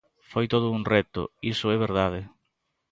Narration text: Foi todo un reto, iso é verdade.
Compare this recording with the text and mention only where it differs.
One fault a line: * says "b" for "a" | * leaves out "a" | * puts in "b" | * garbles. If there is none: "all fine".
all fine